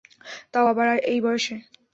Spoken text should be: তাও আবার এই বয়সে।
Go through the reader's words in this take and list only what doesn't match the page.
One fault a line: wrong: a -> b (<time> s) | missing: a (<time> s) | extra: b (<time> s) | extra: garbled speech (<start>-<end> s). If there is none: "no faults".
no faults